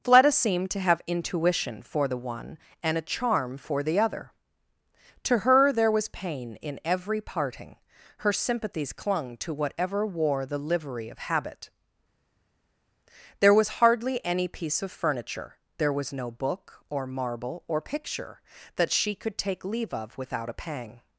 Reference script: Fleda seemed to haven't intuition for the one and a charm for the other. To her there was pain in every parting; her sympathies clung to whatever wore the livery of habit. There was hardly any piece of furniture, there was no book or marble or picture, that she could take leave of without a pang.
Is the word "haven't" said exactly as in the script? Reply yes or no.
no